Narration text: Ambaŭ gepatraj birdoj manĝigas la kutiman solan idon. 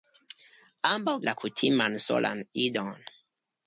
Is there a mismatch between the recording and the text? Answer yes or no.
yes